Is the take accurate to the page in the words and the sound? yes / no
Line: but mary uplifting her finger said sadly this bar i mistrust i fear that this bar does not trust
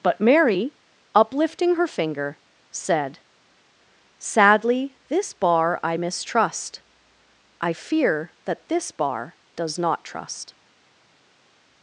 yes